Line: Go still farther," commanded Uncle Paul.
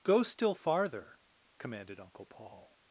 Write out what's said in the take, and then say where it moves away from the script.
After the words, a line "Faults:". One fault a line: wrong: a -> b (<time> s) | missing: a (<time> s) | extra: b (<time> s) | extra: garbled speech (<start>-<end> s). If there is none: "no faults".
Go still farther," commanded Uncle Paul.
Faults:
no faults